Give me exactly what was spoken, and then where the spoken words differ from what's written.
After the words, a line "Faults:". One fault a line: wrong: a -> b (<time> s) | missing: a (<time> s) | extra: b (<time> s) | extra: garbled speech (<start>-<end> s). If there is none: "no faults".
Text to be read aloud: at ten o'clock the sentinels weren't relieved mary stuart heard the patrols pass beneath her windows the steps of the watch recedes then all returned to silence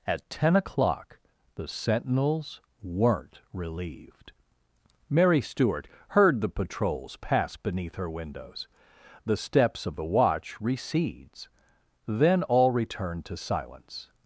at ten o'clock the sentinels weren't relieved mary stuart heard the patrols pass beneath her windows the steps of the watch recedes then all returned to silence
Faults:
no faults